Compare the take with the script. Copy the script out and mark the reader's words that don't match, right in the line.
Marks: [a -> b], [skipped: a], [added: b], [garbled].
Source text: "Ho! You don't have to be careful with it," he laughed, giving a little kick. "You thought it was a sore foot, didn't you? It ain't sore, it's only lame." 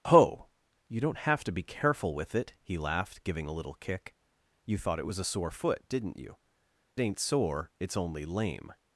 "Ho! You don't have to be careful with it," he laughed, giving a little kick. "You thought it was a sore foot, didn't you? [skipped: It] ain't sore, it's only lame."